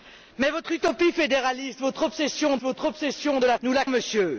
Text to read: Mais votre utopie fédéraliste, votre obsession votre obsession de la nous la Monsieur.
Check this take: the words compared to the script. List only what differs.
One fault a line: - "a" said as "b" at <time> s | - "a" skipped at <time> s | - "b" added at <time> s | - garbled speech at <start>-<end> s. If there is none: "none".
none